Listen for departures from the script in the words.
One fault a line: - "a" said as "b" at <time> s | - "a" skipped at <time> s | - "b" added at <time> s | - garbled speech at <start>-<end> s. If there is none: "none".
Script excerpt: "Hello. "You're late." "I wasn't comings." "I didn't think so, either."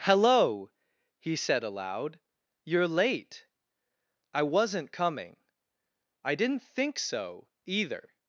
- "he said aloud" added at 1.2 s
- "comings" said as "coming" at 4.9 s